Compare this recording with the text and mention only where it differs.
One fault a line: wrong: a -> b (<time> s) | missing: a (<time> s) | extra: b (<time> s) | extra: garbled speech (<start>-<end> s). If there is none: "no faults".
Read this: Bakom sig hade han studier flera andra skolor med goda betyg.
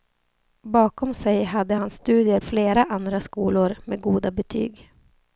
no faults